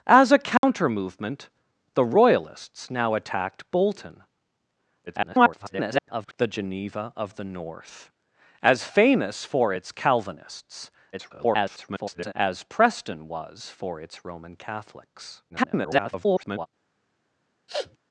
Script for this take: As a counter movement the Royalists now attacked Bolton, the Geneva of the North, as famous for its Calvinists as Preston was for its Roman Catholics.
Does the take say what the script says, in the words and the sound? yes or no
no